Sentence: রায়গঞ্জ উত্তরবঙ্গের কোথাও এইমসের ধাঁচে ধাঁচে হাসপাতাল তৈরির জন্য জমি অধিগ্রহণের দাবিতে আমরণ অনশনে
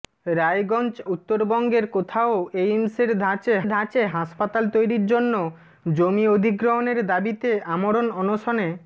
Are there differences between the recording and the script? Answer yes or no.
no